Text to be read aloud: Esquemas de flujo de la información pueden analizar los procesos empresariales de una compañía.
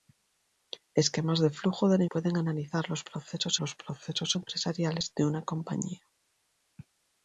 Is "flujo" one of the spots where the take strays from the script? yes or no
no